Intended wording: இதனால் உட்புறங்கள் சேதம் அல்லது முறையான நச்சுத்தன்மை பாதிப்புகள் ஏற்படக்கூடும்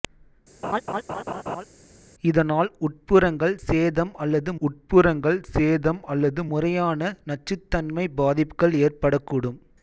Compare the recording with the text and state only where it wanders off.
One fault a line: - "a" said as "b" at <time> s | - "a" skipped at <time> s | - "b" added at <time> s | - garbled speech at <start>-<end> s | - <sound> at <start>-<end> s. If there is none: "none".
- laugh at 0.6-1.7 s
- "உட்புறங்கள் சேதம் அல்லது" added at 4.6 s